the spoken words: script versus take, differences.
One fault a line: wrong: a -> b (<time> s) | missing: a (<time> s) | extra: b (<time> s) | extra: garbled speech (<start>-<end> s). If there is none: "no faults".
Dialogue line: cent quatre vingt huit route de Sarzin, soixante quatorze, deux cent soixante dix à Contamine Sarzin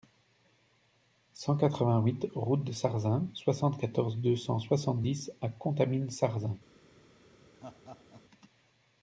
no faults